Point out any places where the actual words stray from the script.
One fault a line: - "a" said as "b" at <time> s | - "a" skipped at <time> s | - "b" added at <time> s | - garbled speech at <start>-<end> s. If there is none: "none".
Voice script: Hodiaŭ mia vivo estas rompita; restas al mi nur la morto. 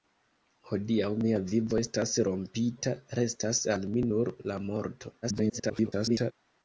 - garbled speech at 5.2-6.3 s